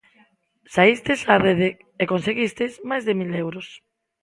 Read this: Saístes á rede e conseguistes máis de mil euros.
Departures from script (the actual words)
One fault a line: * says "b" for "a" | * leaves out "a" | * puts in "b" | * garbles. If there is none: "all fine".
all fine